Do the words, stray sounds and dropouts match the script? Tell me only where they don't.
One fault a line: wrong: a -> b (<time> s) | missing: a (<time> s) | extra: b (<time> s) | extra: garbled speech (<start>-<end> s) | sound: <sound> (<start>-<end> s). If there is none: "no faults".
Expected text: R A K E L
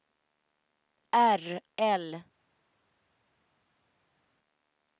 missing: A K E (1.6 s)